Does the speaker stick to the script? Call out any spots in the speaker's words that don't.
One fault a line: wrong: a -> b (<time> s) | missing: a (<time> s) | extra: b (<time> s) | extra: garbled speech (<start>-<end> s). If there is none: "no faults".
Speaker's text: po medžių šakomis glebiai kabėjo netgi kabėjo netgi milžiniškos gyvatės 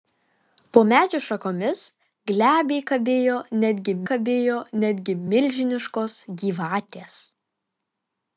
no faults